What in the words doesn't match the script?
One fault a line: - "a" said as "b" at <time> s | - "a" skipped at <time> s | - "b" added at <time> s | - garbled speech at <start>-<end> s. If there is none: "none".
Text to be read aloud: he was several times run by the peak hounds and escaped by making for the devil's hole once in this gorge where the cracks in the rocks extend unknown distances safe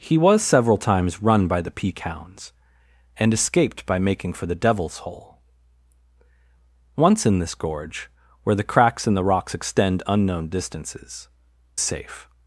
none